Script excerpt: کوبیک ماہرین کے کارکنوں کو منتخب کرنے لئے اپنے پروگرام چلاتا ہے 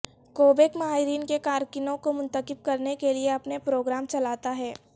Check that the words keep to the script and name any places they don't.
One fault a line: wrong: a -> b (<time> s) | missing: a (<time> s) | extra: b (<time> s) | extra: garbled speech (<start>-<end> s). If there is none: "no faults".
extra: کے (3.0 s)